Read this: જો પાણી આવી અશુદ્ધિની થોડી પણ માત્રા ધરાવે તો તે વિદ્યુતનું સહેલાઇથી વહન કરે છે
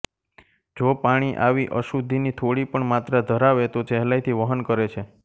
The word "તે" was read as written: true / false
false